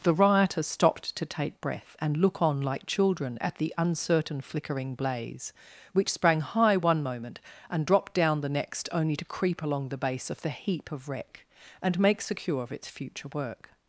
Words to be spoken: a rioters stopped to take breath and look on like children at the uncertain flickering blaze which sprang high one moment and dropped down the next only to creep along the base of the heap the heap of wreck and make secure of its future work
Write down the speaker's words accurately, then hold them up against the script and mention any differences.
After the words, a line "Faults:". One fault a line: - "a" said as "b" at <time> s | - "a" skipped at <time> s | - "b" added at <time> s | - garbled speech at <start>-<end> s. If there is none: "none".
the rioters stopped to take breath and look on like children at the uncertain flickering blaze which sprang high one moment and dropped down the next only to creep along the base of the heap of wreck and make secure of its future work
Faults:
- "a" said as "the" at 0.0 s
- "the heap" skipped at 10.9 s